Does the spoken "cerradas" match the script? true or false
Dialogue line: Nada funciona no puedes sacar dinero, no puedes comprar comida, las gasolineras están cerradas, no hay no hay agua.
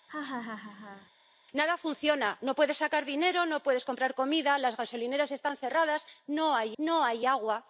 true